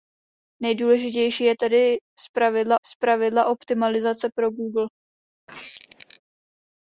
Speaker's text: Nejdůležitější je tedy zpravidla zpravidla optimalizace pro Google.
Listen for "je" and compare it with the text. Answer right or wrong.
right